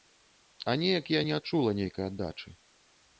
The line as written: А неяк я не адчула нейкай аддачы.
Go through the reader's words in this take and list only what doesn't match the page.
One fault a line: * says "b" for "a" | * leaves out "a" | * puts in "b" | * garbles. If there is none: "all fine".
all fine